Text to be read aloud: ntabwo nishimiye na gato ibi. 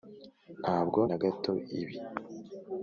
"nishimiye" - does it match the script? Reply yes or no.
no